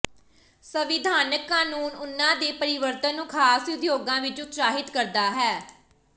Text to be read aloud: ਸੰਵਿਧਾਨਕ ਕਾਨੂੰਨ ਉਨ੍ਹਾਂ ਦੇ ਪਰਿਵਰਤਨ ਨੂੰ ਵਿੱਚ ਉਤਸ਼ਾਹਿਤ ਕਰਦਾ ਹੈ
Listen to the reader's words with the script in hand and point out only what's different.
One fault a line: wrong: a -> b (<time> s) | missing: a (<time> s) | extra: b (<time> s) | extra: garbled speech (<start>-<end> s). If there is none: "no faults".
extra: ਖਾਸ ਉਦਯੋਗਾਂ (3.3 s)